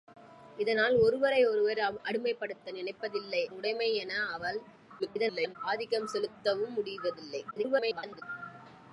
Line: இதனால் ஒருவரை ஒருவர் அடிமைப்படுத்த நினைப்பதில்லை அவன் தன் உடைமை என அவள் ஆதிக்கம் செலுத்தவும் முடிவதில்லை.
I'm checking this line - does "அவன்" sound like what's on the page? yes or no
no